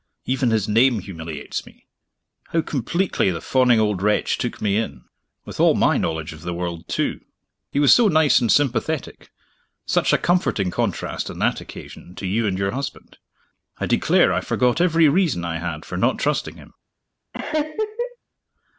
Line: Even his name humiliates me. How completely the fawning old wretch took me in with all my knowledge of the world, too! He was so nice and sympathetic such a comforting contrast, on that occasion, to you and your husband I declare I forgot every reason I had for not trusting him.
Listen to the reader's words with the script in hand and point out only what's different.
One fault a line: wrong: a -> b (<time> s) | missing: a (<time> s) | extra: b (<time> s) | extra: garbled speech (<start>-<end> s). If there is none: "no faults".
no faults